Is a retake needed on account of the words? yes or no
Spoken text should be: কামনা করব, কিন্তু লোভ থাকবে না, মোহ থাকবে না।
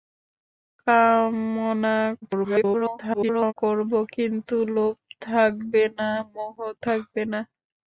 yes